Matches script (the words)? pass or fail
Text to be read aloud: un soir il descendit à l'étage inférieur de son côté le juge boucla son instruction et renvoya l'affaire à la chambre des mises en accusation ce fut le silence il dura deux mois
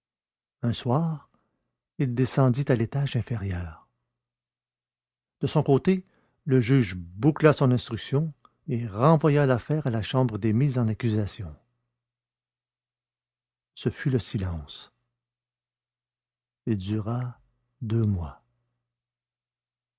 pass